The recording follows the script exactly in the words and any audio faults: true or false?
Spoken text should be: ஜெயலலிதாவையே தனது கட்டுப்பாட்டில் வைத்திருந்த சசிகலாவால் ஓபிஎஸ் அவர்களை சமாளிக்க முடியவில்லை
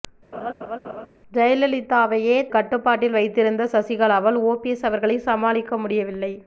false